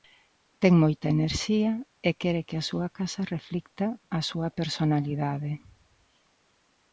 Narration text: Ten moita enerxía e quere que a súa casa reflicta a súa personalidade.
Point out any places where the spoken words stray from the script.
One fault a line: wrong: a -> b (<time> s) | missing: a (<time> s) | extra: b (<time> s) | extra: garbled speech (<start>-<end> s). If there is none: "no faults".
no faults